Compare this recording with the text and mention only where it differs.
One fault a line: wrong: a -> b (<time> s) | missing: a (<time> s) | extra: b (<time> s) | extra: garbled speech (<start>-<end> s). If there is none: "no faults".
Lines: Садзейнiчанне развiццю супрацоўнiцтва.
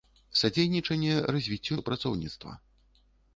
no faults